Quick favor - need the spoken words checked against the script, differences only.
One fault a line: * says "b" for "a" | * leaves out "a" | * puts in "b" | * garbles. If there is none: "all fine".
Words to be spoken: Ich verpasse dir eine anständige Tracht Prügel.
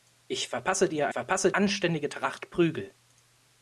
* says "verpasse" for "eine"